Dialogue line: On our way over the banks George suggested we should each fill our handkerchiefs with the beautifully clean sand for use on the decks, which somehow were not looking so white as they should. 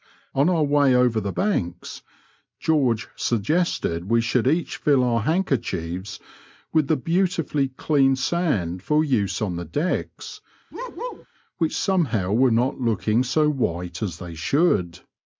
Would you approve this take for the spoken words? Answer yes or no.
yes